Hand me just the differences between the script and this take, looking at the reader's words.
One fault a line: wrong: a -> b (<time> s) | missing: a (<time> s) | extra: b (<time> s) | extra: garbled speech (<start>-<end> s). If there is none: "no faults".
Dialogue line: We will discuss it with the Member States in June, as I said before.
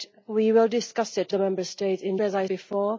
missing: with (1.3 s)
missing: June (2.2 s)
missing: said (2.5 s)